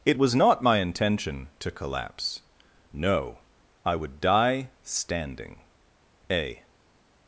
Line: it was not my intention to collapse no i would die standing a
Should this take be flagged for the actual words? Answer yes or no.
no